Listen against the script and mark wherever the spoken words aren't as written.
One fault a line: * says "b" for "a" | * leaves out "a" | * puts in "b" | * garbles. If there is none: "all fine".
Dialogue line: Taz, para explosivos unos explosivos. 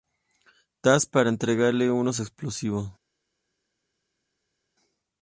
* says "entregarle" for "explosivos"